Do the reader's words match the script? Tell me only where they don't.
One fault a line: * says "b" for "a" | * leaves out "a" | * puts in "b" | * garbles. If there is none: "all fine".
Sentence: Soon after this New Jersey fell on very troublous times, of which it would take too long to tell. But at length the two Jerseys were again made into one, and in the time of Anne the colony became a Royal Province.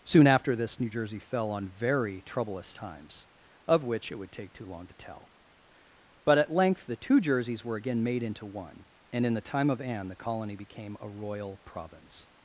all fine